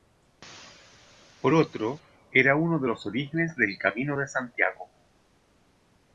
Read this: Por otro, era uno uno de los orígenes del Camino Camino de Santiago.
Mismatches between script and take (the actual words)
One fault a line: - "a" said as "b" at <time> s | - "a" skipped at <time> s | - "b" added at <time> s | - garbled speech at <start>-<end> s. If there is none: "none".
- "uno" skipped at 2.8 s
- "Camino" skipped at 4.2 s